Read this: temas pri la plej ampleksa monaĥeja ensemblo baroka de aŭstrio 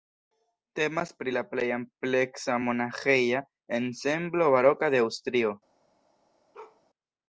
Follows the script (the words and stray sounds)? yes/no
no